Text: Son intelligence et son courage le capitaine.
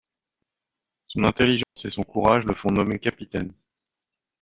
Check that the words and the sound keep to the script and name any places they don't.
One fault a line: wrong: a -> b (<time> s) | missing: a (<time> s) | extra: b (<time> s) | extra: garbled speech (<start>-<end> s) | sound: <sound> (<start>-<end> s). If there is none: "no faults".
sound: dropout (1.6-1.8 s)
extra: font nommer (2.5 s)